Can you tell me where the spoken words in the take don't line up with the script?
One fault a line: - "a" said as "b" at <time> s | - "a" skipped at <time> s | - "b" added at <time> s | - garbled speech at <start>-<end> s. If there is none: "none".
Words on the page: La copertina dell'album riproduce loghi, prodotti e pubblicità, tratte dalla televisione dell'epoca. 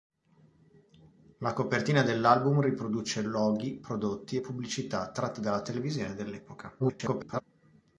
- garbled speech at 6.8-7.4 s